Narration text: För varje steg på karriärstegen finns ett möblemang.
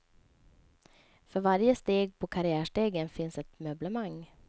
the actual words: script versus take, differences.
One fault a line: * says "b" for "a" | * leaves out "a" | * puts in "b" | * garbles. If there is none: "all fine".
all fine